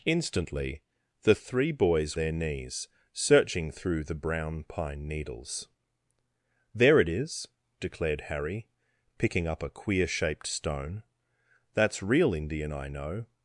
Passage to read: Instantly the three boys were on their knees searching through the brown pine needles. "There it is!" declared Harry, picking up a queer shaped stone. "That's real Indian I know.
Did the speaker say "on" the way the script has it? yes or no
no